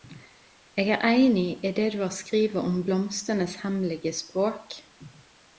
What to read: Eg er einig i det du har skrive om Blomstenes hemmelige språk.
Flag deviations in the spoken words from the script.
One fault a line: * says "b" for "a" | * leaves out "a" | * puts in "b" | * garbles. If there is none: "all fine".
all fine